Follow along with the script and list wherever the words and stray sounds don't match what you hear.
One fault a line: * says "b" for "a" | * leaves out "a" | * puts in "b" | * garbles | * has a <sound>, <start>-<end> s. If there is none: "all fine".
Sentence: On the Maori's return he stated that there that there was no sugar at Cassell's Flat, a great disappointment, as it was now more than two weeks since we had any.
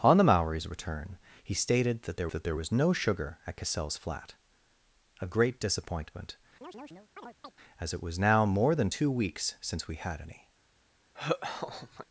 * has a chirp, 6.6-7.6 s
* has a laugh, 11.1-12.1 s